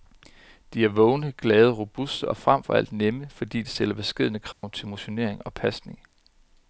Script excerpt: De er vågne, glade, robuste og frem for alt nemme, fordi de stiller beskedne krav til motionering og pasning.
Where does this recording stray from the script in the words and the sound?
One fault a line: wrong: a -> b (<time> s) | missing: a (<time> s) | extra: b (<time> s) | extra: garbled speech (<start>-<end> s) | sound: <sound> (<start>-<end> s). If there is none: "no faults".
sound: dropout (4.5-4.6 s)